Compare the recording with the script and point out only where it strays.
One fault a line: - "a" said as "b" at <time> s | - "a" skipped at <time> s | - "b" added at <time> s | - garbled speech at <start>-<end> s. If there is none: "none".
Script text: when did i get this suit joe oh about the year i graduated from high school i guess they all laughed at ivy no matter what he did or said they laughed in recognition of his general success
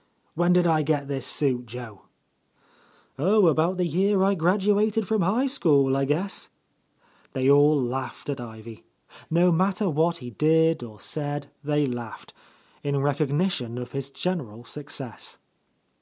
none